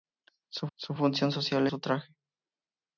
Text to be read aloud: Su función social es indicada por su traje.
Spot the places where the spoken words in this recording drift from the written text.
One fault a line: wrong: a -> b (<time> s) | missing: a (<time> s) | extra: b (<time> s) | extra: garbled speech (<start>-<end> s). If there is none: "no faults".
extra: su (0.7 s)
missing: es indicada por (1.7 s)